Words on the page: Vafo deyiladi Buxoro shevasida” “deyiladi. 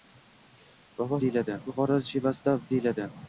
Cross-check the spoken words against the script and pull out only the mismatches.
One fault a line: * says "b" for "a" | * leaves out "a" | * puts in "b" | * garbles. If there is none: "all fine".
all fine